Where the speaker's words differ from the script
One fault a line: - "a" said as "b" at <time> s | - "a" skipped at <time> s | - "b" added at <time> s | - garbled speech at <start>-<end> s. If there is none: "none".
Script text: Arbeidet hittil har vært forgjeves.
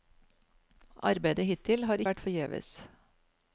none